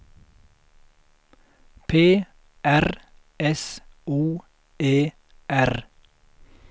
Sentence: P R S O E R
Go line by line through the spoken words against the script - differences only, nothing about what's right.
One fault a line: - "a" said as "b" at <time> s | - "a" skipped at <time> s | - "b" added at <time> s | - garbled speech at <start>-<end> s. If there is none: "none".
none